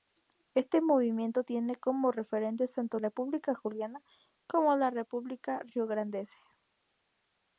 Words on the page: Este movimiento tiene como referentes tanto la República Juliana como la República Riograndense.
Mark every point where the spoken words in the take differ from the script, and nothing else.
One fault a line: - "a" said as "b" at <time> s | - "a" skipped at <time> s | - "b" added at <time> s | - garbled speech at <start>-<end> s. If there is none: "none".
- "la" skipped at 3.0 s